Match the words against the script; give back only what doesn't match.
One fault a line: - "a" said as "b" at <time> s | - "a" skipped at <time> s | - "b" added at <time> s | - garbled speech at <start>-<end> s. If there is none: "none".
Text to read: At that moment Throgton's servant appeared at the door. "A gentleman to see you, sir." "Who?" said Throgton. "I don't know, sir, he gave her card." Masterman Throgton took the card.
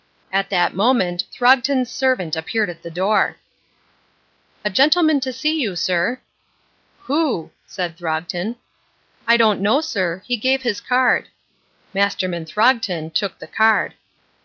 - "her" said as "his" at 10.6 s